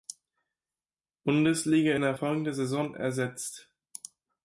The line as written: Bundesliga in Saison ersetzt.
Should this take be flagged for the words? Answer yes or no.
yes